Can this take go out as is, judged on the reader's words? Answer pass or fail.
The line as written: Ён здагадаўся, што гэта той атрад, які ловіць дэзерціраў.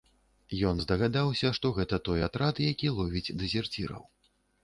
pass